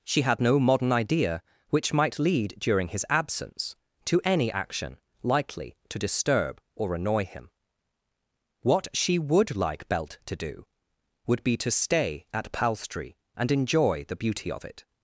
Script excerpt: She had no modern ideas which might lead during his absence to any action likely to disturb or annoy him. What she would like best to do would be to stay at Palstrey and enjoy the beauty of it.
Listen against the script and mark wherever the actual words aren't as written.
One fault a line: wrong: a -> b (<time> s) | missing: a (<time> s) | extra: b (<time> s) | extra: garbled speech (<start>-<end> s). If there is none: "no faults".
wrong: ideas -> idea (0.9 s)
wrong: best -> belt (9.9 s)